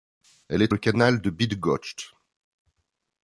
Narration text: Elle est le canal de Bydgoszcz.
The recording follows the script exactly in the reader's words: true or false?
true